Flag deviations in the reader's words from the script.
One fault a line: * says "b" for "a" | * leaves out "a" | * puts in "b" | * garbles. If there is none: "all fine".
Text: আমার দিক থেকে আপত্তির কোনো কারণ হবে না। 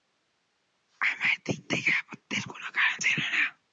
* says "ছিল" for "হবে"